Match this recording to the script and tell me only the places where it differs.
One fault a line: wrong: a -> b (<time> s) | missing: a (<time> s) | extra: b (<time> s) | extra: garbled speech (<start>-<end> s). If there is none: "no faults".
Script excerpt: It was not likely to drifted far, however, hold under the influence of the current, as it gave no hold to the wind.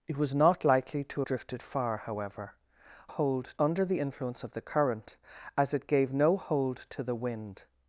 no faults